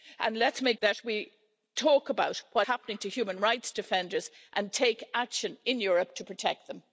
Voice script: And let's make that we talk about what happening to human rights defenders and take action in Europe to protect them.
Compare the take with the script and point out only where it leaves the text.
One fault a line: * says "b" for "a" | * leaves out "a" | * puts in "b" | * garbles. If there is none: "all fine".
all fine